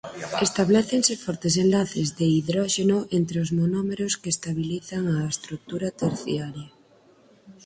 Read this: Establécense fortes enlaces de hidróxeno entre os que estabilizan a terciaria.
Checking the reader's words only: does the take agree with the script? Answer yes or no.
no